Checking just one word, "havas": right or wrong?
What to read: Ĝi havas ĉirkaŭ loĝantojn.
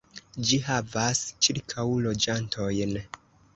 right